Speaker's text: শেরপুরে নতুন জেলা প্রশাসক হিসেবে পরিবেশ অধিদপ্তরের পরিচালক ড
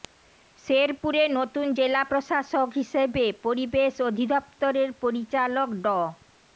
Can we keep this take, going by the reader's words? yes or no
yes